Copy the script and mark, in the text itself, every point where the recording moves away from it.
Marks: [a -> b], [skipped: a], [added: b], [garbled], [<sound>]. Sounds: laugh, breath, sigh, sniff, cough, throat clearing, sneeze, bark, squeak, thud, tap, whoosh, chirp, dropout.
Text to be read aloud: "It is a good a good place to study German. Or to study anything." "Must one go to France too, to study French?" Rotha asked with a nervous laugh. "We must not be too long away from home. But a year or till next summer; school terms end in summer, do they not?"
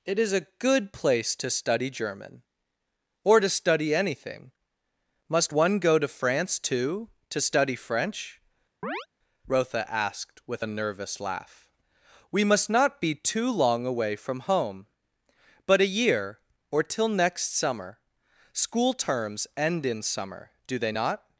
"It is a good [skipped: a good] place to study German. Or to study anything." "Must one go to France too, to study French?" [chirp] Rotha asked with a nervous laugh. "We must not be too long away from home. But a year or till next summer; school terms end in summer, do they not?"